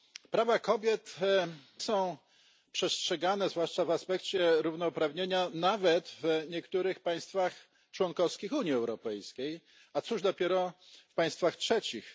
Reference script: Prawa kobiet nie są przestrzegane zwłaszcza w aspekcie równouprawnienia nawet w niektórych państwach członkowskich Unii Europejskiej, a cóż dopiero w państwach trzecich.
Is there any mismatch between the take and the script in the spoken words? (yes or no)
yes